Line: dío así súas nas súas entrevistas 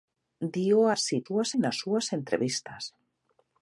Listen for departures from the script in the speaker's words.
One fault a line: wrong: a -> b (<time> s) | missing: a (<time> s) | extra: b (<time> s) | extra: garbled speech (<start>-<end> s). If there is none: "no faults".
no faults